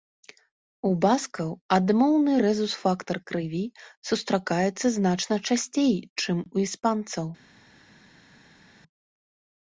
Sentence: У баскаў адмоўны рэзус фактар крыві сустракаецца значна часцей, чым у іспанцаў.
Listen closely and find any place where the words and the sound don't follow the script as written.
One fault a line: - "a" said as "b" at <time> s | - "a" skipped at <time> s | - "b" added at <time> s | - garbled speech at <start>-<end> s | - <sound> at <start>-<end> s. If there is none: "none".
none